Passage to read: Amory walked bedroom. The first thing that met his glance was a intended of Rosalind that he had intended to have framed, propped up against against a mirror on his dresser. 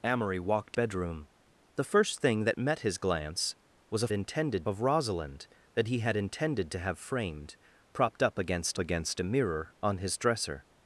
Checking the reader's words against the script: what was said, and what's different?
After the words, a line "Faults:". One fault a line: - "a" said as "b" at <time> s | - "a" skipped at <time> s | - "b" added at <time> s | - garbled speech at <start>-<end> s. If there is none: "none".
Amory walked bedroom. The first thing that met his glance was a intended of Rosalind that he had intended to have framed, propped up against against a mirror on his dresser.
Faults:
none